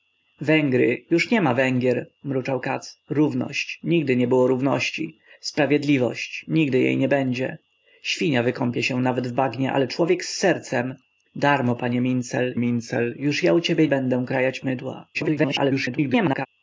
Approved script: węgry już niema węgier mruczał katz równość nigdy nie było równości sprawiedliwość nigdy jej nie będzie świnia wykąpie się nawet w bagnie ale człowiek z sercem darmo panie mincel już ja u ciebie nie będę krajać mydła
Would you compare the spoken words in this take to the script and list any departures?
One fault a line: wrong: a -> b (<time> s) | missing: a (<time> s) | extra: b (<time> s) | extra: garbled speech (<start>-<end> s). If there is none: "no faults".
extra: mincel (12.6 s)
missing: nie (13.9 s)
extra: garbled speech (15.1-16.5 s)